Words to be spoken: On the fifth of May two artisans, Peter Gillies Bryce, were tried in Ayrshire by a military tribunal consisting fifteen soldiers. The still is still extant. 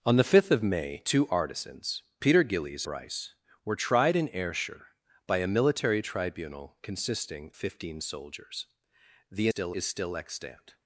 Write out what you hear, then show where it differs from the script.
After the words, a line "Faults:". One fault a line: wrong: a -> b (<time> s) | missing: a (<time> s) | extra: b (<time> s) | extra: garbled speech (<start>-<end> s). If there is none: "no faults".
On the fifth of May two artisans, Peter Gillies Bryce, were tried in Ayrshire by a military tribunal consisting fifteen soldiers. The still is still extant.
Faults:
no faults